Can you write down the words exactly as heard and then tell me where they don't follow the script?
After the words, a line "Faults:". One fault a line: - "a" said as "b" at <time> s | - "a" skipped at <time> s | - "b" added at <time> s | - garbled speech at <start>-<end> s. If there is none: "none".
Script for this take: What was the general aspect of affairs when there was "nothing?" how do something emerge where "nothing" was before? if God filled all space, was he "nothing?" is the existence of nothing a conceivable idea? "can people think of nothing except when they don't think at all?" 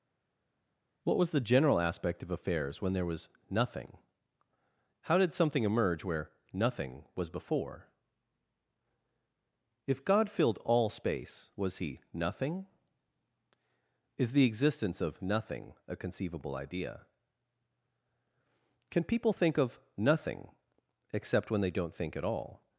What was the general aspect of affairs when there was "nothing?" how did something emerge where "nothing" was before? if God filled all space, was he "nothing?" is the existence of nothing a conceivable idea? "can people think of nothing except when they don't think at all?"
Faults:
- "do" said as "did" at 5.2 s